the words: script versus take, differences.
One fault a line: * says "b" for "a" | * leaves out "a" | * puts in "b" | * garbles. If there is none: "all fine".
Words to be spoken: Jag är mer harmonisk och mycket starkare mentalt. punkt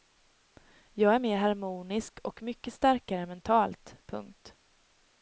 all fine